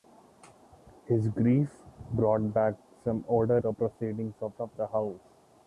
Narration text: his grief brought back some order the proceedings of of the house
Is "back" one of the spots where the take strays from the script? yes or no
no